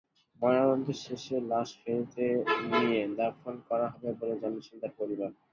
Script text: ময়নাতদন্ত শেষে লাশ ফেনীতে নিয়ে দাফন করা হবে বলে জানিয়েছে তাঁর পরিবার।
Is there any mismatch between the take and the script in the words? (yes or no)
no